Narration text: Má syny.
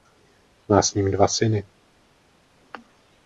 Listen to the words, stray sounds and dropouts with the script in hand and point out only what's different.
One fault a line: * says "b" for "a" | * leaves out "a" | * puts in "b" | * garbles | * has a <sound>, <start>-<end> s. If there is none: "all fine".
* puts in "s ním dva"